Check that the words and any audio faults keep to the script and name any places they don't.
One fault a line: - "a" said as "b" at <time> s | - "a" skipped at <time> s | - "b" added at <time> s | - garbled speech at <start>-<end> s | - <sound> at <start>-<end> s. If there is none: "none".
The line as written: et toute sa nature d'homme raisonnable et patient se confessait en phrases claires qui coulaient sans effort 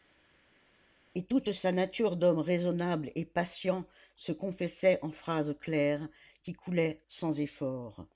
none